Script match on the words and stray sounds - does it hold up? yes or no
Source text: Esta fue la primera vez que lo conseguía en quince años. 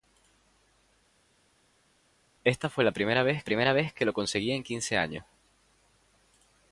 no